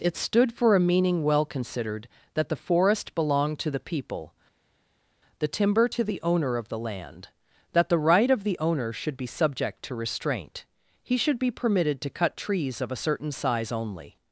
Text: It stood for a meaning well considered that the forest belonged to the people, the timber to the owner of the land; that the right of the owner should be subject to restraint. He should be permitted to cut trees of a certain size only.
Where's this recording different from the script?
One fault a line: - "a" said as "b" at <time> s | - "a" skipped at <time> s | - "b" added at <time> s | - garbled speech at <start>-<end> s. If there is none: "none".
none